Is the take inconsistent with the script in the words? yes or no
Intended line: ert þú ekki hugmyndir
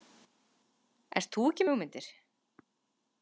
no